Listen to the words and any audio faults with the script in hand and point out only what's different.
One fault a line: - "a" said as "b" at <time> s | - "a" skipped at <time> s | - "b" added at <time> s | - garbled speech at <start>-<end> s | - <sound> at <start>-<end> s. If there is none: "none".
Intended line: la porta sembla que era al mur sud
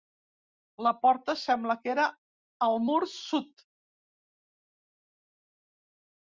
none